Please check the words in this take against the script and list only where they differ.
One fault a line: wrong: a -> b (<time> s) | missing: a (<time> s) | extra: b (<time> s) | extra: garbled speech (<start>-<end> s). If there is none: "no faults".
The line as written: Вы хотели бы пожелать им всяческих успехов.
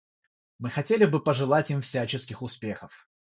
wrong: Вы -> Мы (0.6 s)